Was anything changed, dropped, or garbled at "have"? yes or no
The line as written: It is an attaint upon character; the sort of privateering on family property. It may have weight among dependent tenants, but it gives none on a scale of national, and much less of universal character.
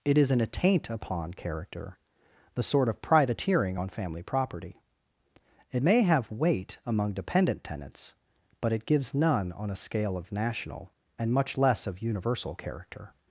no